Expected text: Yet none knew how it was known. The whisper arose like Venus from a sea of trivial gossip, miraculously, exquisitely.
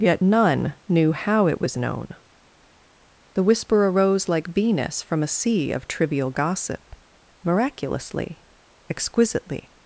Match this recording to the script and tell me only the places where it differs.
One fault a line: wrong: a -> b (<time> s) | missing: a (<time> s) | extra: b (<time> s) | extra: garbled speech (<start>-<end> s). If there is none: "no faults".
no faults